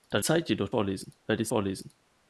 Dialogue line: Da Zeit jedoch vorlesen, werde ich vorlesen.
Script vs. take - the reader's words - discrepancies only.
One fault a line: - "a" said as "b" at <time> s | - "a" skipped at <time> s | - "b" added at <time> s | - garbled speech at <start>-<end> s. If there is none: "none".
none